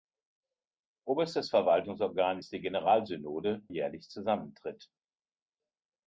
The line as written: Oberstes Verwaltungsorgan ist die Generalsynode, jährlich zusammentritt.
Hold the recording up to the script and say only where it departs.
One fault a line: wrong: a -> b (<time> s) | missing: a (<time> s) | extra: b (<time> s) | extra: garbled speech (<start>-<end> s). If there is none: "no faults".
no faults